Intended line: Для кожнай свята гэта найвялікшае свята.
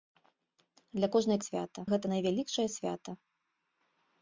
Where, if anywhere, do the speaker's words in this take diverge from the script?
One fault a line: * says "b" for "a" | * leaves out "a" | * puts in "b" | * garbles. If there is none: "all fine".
all fine